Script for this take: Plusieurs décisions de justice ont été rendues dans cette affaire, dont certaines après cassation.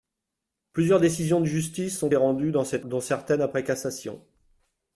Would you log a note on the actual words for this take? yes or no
yes